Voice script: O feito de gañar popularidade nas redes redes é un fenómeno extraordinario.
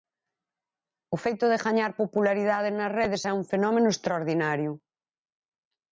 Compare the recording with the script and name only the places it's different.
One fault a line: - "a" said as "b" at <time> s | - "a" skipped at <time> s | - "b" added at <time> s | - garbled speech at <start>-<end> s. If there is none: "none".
- "redes" skipped at 3.2 s